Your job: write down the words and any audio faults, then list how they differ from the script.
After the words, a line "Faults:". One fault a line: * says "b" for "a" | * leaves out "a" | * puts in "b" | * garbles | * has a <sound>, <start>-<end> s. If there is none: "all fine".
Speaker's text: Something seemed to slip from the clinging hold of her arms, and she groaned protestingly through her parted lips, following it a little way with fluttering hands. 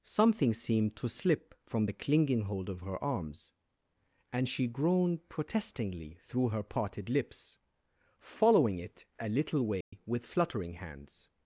Something seemed to slip from the clinging hold of her arms, and she groaned protestingly through her parted lips, following it a little way with fluttering hands.
Faults:
* has a dropout, 9.8-9.9 s